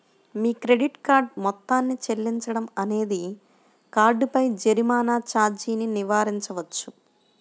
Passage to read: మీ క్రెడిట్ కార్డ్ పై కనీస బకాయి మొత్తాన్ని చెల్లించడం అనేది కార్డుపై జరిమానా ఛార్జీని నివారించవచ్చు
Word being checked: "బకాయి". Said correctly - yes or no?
no